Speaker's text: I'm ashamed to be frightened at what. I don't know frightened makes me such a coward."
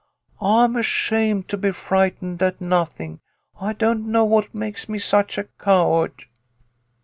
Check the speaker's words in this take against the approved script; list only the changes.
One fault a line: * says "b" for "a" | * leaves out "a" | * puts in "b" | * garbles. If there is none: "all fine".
* says "nothing" for "what"
* says "what" for "frightened"